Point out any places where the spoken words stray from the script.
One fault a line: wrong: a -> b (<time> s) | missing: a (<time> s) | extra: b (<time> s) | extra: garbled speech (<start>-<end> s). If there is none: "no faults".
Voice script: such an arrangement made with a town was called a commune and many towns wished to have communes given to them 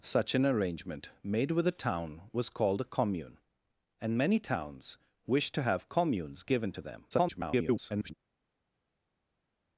extra: garbled speech (7.1-8.1 s)